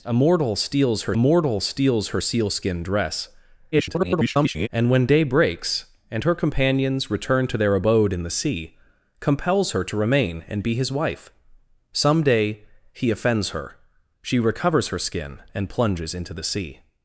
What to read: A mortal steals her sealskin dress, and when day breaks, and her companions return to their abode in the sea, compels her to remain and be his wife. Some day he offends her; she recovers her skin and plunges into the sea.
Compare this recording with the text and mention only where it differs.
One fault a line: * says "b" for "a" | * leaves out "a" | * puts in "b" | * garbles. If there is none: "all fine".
* puts in "mortal steals her"
* garbles